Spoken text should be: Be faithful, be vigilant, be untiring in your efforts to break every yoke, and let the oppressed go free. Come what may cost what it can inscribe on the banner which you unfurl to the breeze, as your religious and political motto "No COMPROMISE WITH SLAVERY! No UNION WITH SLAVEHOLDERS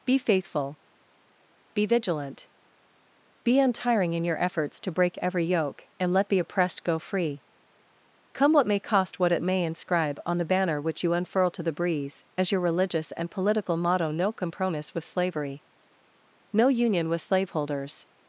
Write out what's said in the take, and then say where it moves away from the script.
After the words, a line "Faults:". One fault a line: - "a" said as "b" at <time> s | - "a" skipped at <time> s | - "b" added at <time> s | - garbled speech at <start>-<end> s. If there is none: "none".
Be faithful, be vigilant, be untiring in your efforts to break every yoke, and let the oppressed go free. Come what may cost what it may inscribe on the banner which you unfurl to the breeze, as your religious and political motto "No COMPROMISE WITH SLAVERY! No UNION WITH SLAVEHOLDERS
Faults:
- "can" said as "may" at 9.4 s